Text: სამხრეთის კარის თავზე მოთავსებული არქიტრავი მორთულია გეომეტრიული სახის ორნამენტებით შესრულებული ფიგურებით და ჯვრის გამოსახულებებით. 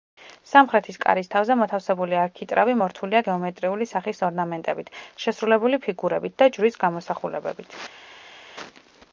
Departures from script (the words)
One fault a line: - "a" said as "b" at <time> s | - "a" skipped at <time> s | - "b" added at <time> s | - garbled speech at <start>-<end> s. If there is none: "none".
none